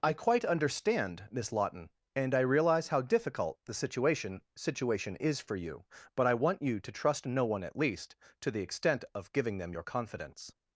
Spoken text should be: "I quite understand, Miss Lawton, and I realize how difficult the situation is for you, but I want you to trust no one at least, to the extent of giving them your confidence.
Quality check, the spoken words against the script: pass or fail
fail